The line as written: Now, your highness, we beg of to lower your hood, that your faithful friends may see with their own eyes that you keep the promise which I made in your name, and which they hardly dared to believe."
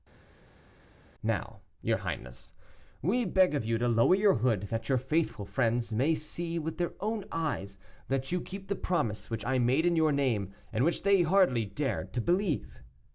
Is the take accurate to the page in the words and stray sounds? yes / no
no